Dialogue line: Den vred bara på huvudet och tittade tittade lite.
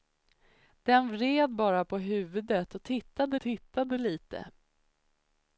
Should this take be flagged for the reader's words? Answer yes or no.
no